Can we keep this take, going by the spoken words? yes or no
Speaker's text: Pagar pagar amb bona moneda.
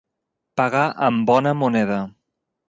no